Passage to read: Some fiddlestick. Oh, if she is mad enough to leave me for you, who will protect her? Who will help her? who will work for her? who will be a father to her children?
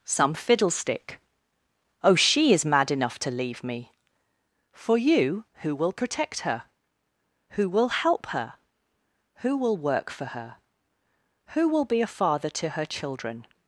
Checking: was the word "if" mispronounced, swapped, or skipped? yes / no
yes